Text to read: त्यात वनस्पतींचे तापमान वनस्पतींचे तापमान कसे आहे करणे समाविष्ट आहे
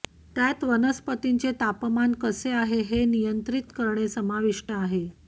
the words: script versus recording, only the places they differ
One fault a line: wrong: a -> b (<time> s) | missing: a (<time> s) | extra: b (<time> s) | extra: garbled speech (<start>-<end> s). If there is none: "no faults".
wrong: वनस्पतींचे तापमान कसे आहे -> कसे आहे हे नियंत्रित (2.2 s)